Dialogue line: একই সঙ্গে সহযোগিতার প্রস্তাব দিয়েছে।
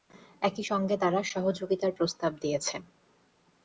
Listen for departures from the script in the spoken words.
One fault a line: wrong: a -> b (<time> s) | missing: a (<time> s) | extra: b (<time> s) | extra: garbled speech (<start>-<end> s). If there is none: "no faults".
extra: তারা (1.0 s)